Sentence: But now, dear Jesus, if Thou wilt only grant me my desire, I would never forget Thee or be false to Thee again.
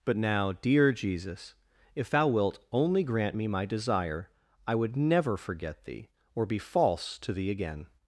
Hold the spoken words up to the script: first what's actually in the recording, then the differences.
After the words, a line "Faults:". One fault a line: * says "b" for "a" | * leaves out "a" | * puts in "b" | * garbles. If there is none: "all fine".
But now, dear Jesus, if Thou wilt only grant me my desire, I would never forget Thee or be false to Thee again.
Faults:
all fine